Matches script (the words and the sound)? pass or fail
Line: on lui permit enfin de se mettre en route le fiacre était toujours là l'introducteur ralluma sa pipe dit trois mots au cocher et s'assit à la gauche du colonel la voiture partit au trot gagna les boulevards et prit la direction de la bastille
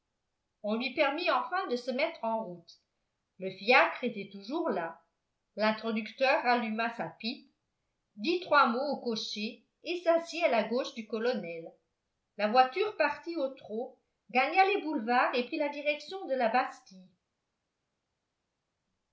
pass